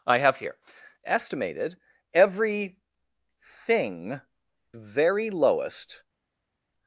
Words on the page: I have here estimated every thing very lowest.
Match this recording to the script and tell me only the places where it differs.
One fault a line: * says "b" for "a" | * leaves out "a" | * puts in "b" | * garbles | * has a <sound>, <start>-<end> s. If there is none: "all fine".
all fine